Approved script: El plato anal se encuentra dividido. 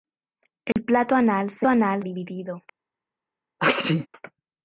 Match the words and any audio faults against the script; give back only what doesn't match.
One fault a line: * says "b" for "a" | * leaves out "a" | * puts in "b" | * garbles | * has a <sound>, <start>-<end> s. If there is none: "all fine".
* has a dropout, 0.7-0.8 s
* says "anal" for "encuentra"
* has a sneeze, 3.6-4.1 s